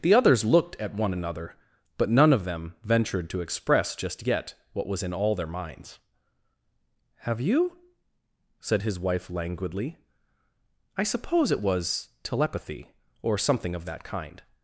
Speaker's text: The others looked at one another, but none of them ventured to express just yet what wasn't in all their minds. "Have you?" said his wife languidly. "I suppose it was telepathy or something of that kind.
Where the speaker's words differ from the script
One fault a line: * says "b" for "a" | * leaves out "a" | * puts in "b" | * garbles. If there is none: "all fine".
* says "was" for "wasn't"